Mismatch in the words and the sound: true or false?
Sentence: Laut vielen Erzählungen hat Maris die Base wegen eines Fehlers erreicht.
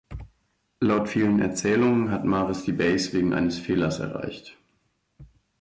false